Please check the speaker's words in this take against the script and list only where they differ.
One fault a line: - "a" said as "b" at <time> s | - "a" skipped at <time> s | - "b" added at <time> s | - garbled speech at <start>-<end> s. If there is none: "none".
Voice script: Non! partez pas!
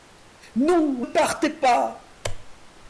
none